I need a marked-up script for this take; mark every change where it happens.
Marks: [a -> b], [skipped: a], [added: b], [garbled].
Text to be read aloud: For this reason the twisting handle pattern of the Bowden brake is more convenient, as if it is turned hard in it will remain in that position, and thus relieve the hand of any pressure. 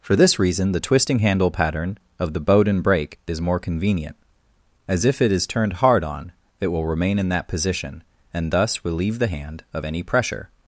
For this reason the twisting handle pattern of the Bowden brake is more convenient, as if it is turned hard [in -> on] it will remain in that position, and thus relieve the hand of any pressure.